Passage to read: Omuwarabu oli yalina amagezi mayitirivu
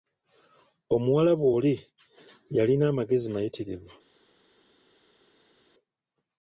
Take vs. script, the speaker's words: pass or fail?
pass